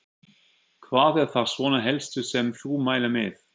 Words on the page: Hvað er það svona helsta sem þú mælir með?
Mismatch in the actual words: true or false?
false